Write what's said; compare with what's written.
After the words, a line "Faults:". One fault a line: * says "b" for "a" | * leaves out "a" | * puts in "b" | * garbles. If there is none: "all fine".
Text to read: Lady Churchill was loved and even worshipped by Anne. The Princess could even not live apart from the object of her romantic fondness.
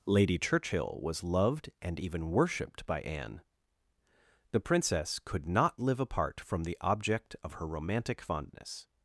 Lady Churchill was loved and even worshipped by Anne. The Princess could not live apart from the object of her romantic fondness.
Faults:
* leaves out "even"